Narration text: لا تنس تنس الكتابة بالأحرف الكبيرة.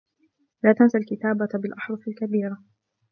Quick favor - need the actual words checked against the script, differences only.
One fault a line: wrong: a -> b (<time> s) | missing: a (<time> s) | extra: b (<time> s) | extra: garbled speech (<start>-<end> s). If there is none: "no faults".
missing: تنس (1.0 s)